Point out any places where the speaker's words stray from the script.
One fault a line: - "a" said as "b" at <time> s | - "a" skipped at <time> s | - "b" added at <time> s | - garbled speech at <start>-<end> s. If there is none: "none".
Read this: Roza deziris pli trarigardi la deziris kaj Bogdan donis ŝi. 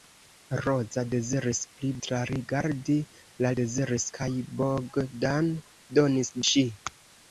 none